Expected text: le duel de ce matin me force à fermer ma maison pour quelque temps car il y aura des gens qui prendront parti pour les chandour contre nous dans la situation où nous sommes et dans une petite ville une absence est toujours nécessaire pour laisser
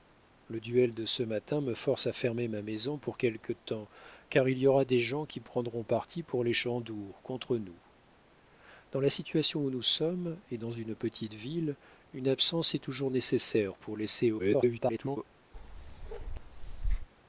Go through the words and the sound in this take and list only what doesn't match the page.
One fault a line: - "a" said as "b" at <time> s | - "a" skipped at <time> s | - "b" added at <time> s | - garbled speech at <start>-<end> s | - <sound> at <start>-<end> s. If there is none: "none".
- garbled speech at 14.4-15.2 s
- bark at 15.5-17.1 s